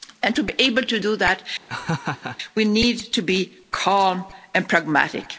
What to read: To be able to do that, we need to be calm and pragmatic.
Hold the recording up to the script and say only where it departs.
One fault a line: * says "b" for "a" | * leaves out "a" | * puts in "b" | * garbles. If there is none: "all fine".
all fine